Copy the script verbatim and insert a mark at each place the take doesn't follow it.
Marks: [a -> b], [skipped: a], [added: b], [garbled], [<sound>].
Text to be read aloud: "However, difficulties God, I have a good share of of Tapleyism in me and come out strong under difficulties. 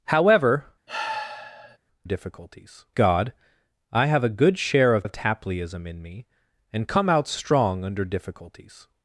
"However, [sigh] difficulties God, I have a good share of of Tapleyism in me and come out strong under difficulties.